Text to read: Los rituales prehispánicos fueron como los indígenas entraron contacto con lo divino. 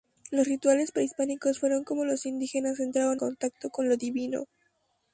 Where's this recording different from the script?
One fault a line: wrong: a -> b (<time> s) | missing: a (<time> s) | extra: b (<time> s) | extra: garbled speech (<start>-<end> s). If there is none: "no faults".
no faults